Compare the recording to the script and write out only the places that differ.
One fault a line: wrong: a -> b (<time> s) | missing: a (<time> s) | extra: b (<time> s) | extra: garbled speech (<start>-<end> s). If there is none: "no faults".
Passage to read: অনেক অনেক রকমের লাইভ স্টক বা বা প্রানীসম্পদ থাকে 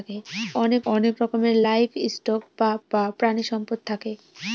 no faults